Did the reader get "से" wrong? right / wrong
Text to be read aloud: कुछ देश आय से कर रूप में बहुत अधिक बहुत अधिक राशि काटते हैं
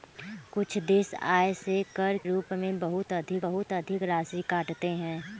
right